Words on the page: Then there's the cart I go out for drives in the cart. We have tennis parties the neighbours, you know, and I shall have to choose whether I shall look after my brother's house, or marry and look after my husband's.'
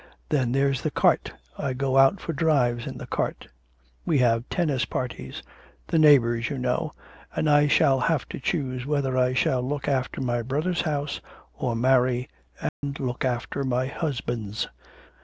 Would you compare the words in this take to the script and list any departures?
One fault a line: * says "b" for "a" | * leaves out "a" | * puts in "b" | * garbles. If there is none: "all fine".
all fine